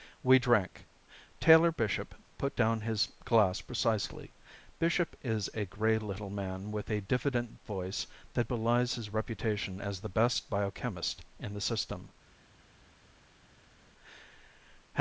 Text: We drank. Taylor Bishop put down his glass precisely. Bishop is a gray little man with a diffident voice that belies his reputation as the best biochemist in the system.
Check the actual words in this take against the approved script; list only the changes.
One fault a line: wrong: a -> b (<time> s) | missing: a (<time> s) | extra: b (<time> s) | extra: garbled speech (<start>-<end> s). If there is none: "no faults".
no faults